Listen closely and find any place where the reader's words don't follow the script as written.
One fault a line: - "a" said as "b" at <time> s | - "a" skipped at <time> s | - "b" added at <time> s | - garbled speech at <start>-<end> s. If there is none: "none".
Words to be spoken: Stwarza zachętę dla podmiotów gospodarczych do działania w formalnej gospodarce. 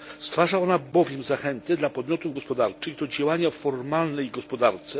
- "ona bowiem" added at 0.6 s